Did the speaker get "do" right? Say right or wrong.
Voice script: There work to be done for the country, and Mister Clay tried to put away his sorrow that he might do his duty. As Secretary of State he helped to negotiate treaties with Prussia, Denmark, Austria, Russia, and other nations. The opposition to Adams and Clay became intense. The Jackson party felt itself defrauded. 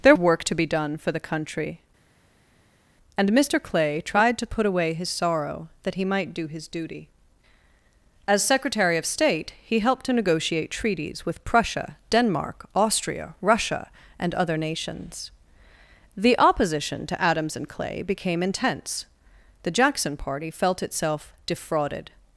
right